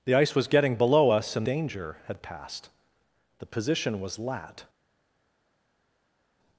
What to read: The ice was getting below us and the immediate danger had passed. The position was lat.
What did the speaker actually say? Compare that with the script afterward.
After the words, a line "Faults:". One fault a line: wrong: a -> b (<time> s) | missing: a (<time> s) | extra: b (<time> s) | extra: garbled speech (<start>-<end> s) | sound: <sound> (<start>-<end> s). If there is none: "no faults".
The ice was getting below us and danger had passed. The position was lat.
Faults:
missing: the immediate (1.5 s)